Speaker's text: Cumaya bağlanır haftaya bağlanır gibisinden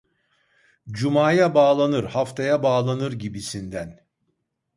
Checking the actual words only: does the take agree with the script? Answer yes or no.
yes